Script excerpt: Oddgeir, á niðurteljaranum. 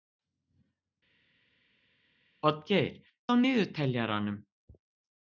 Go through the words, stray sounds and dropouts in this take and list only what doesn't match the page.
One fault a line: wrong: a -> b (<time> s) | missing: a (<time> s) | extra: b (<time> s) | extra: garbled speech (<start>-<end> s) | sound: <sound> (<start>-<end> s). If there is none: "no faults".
no faults